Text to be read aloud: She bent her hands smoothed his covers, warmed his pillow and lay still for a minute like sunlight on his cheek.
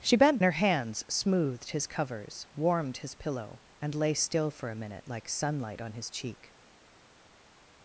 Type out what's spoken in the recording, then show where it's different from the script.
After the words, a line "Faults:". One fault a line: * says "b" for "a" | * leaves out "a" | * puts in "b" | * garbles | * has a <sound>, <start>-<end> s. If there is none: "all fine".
She bent her hands smoothed his covers, warmed his pillow and lay still for a minute like sunlight on his cheek.
Faults:
all fine